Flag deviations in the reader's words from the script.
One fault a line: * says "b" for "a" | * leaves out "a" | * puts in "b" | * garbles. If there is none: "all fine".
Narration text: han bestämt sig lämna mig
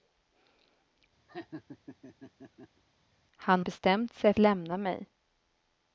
all fine